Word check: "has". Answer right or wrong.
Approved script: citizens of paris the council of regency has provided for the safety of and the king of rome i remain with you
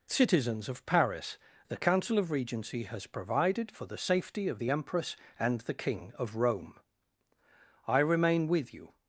right